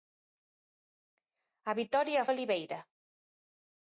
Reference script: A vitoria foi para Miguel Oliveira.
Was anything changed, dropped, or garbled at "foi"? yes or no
yes